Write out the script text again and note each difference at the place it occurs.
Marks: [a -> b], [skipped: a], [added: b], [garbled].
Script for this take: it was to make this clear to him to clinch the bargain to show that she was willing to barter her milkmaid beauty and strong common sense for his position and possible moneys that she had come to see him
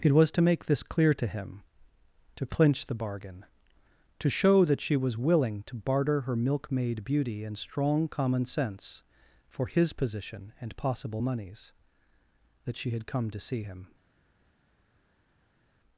it was to make this clear to him to clinch the bargain to show that she was willing to barter her milkmaid beauty and strong common sense for his position and possible moneys that she had come to see him